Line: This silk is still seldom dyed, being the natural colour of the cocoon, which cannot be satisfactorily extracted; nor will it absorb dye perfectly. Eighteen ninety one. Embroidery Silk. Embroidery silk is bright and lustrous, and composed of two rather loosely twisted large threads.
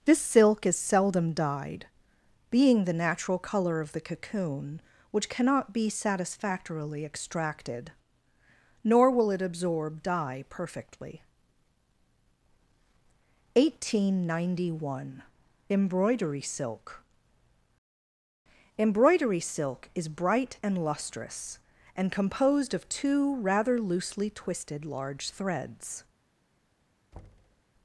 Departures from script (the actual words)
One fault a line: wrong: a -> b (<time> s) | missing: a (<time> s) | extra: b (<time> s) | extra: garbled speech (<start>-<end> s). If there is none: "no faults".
missing: still (0.8 s)